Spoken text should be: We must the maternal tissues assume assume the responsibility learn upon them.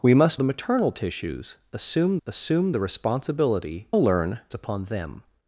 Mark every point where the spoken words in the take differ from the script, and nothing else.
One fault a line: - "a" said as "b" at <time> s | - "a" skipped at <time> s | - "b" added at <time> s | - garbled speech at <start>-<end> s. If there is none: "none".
none